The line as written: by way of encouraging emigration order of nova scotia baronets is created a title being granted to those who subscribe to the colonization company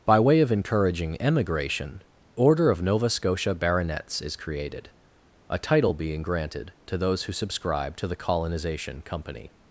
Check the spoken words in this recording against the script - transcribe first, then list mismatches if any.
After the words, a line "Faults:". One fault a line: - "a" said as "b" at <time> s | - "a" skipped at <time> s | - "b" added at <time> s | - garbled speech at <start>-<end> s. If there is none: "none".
by way of encouraging emigration order of nova scotia baronets is created a title being granted to those who subscribe to the colonization company
Faults:
none